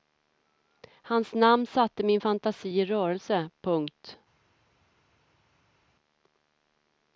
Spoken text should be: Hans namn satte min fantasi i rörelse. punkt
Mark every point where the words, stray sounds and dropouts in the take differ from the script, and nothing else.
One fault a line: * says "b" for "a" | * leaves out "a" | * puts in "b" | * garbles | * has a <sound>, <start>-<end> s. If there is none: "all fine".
all fine